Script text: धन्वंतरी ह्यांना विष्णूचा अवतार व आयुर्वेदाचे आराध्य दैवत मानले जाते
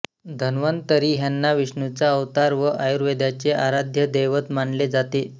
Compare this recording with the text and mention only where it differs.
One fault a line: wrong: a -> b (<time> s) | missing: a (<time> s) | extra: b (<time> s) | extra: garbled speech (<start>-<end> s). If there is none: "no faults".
no faults